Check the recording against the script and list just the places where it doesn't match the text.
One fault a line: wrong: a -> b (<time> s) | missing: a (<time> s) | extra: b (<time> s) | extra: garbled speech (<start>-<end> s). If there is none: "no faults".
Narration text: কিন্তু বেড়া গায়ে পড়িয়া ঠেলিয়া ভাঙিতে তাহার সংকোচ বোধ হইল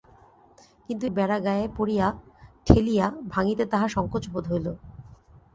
no faults